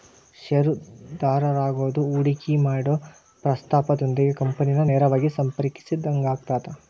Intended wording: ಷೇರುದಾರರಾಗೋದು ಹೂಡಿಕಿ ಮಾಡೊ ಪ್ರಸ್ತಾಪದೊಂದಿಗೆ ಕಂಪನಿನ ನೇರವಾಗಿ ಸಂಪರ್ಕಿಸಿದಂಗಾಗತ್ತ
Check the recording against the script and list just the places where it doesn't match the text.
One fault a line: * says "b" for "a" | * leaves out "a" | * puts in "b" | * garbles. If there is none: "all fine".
all fine